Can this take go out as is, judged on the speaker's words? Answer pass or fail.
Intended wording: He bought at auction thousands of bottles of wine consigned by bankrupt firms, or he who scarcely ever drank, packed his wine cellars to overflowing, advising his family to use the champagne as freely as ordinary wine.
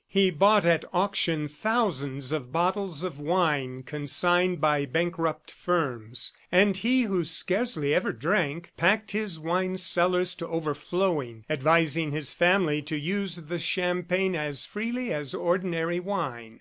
fail